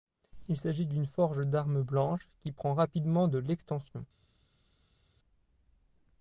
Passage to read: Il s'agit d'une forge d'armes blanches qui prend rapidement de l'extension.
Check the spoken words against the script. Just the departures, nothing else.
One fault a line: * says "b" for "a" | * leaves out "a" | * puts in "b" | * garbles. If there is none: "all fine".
all fine